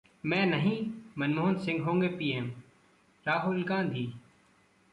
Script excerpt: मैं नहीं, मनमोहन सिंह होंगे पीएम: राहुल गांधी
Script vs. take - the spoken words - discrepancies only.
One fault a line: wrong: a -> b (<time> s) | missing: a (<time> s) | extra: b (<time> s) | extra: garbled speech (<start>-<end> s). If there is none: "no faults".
no faults